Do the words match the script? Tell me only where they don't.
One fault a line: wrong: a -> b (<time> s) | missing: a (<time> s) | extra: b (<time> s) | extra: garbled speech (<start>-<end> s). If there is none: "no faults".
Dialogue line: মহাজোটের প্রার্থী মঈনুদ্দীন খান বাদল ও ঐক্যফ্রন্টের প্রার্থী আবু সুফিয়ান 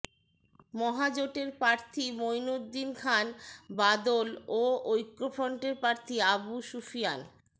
no faults